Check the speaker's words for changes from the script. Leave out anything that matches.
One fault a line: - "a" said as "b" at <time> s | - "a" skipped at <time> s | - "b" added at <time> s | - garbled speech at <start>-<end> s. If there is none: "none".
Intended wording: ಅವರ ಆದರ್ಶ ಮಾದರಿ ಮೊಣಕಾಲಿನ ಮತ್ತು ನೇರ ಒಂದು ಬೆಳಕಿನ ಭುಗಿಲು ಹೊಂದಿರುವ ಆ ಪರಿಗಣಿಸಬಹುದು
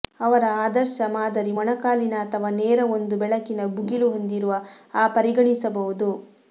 - "ಮತ್ತು" said as "ಅಥವಾ" at 2.2 s